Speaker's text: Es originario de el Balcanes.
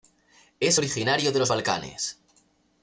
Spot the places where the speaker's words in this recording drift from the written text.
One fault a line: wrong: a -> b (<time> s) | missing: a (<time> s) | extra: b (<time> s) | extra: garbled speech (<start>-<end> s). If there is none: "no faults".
wrong: el -> los (1.4 s)